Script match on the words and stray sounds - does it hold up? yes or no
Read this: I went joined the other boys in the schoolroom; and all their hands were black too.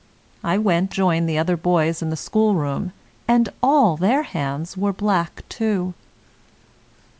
yes